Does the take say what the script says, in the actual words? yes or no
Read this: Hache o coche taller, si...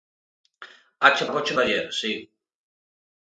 yes